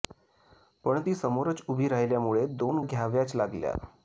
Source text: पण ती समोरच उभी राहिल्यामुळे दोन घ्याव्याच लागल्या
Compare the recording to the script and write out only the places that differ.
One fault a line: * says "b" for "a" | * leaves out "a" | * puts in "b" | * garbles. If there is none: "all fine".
all fine